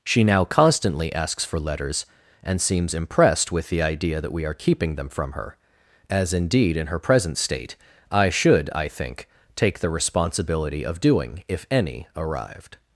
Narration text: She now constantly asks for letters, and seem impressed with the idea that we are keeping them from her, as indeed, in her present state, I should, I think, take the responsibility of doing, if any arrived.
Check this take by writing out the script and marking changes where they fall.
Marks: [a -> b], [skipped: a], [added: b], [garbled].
She now constantly asks for letters, and [seem -> seems] impressed with the idea that we are keeping them from her, as indeed, in her present state, I should, I think, take the responsibility of doing, if any arrived.